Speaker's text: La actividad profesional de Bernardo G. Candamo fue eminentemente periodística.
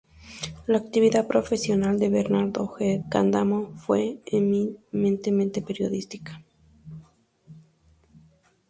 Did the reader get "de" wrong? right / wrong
right